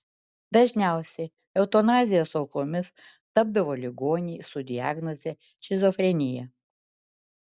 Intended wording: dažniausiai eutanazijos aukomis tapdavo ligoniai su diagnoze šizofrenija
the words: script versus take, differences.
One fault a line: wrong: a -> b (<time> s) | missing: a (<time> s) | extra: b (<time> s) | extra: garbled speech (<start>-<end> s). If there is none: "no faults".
no faults